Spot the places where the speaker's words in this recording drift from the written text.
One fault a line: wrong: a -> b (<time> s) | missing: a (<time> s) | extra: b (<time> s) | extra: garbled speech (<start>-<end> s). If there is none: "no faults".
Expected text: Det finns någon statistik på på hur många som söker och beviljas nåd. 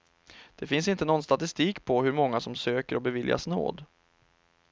extra: inte (0.9 s)
missing: på (2.0 s)